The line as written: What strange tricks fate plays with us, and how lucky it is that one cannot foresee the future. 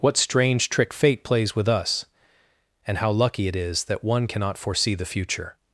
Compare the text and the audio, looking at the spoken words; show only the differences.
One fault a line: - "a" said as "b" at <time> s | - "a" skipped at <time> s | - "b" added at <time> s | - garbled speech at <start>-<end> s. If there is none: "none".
- "tricks" said as "trick" at 0.7 s